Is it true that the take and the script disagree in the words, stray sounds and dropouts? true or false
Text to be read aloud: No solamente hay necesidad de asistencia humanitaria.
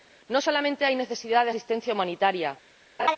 true